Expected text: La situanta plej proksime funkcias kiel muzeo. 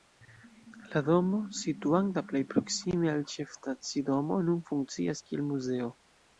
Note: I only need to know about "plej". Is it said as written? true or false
true